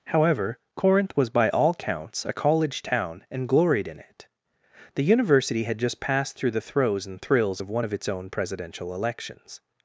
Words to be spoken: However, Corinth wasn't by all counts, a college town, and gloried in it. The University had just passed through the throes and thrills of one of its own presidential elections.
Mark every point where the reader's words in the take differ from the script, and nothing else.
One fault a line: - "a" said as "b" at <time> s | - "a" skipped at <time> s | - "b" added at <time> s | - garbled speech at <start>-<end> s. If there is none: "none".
- "wasn't" said as "was" at 1.1 s